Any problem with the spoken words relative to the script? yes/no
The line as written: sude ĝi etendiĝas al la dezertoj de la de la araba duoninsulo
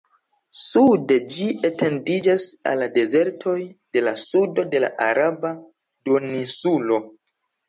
yes